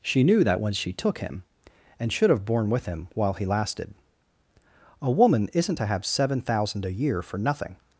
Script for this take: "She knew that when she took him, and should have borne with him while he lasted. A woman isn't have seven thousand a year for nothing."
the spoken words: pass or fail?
fail